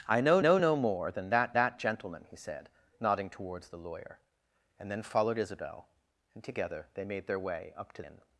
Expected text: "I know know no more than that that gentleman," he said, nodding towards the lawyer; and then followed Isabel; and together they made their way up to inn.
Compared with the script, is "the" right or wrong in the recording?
right